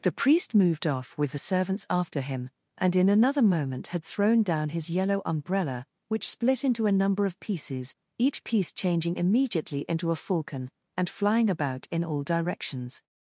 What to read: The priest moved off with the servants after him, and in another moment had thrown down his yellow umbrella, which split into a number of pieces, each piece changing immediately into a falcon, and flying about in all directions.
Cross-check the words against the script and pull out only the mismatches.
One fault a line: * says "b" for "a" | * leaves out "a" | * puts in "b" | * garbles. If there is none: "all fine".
all fine